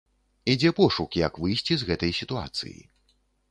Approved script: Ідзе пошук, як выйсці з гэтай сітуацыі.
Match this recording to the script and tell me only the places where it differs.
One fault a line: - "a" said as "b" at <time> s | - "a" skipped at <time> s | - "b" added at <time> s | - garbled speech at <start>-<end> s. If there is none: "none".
none